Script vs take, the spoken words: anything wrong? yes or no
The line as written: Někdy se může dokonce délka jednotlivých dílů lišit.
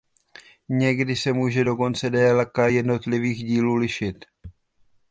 no